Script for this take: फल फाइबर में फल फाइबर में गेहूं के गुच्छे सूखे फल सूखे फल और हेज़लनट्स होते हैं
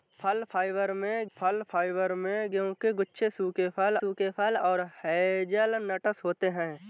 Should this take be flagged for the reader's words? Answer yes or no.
no